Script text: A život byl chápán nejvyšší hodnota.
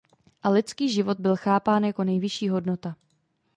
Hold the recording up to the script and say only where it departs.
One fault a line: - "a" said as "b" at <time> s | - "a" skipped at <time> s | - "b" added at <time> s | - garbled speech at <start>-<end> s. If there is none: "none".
- "lidský" added at 0.5 s
- "jako" added at 1.8 s